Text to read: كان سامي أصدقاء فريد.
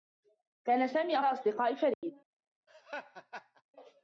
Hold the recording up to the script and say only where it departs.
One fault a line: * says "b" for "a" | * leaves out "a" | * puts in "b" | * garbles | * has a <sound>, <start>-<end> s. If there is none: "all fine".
* has a dropout, 1.9-2.0 s
* has a laugh, 2.7-3.6 s